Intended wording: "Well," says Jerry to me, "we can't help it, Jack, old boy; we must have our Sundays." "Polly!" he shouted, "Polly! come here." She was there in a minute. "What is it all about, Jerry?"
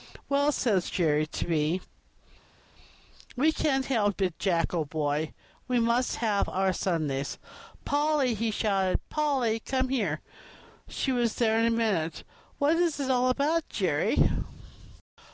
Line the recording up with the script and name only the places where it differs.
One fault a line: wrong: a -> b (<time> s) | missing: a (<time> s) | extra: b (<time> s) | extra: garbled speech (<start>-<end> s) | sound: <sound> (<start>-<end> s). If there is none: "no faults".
no faults